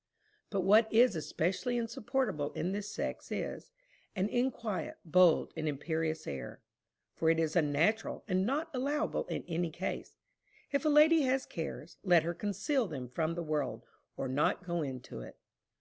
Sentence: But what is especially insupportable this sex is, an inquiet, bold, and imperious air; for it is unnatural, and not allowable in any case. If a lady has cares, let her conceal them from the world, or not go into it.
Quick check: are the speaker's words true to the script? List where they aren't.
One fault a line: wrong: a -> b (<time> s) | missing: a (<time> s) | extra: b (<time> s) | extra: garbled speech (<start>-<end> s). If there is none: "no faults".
extra: in (2.5 s)